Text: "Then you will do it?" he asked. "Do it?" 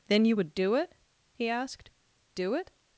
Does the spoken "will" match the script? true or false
false